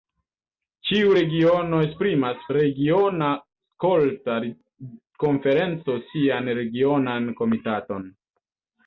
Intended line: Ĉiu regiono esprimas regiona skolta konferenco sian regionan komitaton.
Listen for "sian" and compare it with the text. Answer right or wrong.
right